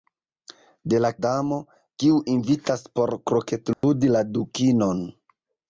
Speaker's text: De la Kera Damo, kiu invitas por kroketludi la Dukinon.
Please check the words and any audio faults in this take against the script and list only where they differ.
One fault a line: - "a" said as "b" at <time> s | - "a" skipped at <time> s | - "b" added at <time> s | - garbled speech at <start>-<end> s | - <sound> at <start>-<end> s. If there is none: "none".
- "Kera" skipped at 1.1 s
- dropout at 3.7-3.8 s